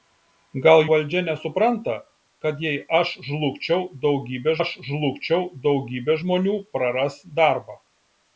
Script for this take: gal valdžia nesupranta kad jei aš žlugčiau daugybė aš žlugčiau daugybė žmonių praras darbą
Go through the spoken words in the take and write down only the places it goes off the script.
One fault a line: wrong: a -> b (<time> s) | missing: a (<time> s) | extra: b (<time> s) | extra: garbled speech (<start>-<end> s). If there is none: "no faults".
no faults